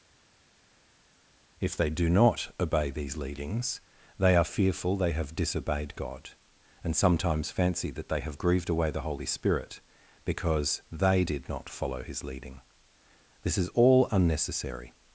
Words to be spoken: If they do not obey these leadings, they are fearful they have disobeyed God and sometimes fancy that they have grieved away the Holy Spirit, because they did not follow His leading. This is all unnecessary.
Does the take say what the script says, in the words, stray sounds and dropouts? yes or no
yes